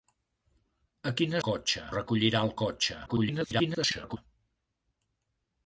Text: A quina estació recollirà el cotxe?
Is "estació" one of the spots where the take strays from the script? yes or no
yes